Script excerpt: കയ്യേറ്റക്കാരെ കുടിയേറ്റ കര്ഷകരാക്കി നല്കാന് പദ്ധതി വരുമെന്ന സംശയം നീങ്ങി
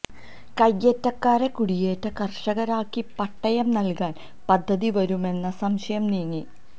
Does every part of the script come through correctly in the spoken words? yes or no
no